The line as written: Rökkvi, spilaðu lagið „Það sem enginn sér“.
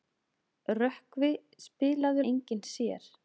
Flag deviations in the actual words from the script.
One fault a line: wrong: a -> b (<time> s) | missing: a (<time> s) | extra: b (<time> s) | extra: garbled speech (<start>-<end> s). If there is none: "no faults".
missing: lagið Það sem (2.2 s)